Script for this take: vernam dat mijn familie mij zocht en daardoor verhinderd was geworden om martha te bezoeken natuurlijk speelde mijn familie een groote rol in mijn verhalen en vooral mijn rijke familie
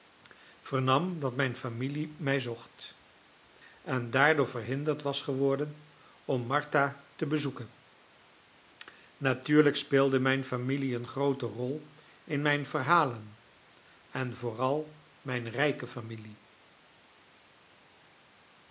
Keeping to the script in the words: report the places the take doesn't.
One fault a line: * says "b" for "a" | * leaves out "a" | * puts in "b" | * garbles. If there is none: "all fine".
all fine